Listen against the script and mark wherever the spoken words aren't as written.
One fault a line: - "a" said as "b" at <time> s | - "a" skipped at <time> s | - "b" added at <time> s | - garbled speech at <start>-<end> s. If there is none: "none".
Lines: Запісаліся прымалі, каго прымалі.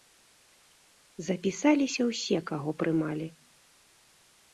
- "прымалі" said as "ўсе" at 2.1 s